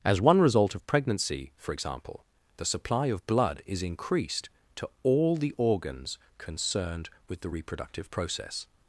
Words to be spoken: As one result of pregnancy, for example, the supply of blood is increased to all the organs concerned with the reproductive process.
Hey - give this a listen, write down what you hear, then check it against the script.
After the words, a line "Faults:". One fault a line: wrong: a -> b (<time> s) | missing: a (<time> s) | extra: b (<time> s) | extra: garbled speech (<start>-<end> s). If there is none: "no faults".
As one result of pregnancy, for example, the supply of blood is increased to all the organs concerned with the reproductive process.
Faults:
no faults